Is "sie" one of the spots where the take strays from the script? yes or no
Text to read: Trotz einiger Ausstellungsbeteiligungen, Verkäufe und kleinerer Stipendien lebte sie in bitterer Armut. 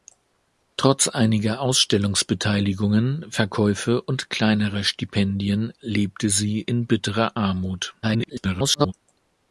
no